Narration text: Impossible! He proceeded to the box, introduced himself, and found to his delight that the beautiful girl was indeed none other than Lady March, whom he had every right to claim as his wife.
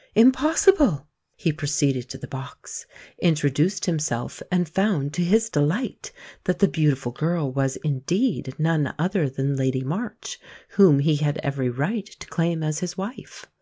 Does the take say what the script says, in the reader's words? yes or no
yes